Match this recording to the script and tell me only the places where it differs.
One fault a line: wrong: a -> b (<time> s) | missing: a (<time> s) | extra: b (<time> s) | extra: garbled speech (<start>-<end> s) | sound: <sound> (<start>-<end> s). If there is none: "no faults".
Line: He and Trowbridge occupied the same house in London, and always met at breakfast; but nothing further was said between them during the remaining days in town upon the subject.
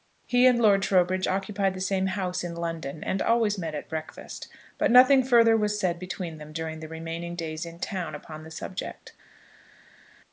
extra: Lord (0.6 s)